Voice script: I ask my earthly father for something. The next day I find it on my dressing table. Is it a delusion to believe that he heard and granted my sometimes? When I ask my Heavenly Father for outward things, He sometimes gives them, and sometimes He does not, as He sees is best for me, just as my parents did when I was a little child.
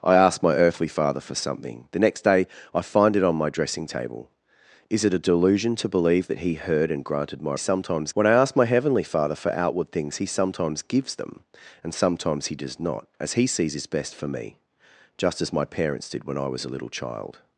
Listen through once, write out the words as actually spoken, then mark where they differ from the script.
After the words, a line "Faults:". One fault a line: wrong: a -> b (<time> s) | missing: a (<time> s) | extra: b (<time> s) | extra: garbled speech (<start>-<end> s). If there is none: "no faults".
I ask my earthly father for something. The next day I find it on my dressing table. Is it a delusion to believe that he heard and granted my sometimes? When I ask my Heavenly Father for outward things, He sometimes gives them, and sometimes He does not, as He sees is best for me, just as my parents did when I was a little child.
Faults:
no faults